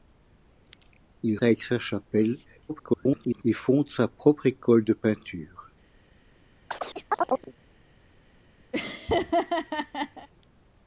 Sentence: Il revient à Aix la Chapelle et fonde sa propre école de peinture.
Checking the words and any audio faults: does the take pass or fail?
fail